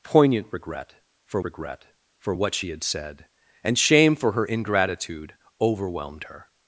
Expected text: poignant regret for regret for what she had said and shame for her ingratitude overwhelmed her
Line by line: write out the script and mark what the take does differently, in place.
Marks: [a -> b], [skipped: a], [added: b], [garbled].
poignant regret for regret for what she had said and shame for her ingratitude overwhelmed her